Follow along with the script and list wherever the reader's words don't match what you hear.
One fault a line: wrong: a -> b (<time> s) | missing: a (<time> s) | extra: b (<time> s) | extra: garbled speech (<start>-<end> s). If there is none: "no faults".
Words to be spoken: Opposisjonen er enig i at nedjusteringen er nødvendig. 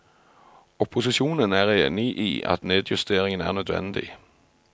no faults